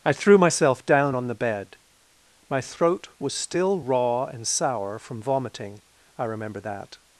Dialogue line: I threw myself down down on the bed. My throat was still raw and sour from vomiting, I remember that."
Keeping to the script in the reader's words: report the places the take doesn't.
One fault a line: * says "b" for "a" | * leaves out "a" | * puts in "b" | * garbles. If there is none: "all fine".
* leaves out "down"